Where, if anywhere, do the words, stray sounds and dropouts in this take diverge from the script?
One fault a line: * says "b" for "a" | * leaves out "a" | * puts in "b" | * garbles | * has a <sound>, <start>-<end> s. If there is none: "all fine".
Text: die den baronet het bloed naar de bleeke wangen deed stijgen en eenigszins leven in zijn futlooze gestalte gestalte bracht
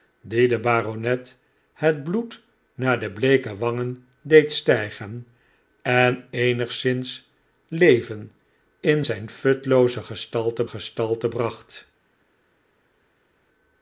all fine